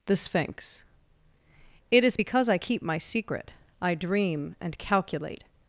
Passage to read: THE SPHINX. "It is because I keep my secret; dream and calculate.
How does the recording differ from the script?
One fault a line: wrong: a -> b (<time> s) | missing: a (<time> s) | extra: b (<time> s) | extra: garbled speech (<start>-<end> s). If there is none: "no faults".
extra: I (3.8 s)